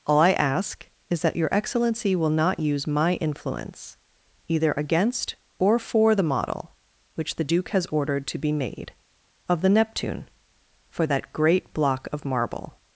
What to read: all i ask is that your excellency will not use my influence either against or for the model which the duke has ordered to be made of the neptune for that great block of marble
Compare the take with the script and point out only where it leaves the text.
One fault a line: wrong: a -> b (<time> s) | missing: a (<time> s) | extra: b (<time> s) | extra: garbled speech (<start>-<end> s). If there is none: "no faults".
no faults